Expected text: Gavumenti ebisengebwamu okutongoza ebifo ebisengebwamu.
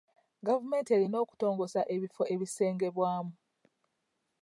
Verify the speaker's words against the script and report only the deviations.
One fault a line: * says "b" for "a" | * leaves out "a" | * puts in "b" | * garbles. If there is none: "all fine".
* says "erina" for "ebisengebwamu"